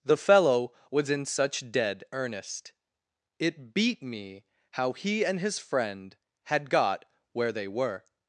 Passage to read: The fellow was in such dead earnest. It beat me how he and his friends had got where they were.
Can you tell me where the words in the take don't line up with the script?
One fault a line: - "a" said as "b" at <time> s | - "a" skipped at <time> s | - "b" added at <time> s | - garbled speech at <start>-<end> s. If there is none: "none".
- "friends" said as "friend" at 5.6 s